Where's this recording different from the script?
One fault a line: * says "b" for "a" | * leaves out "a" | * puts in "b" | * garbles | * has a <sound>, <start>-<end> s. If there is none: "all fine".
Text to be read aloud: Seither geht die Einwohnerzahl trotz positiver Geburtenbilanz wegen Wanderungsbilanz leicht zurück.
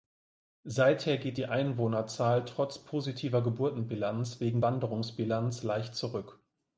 all fine